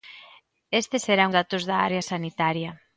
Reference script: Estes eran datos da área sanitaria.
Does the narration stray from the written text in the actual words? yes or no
no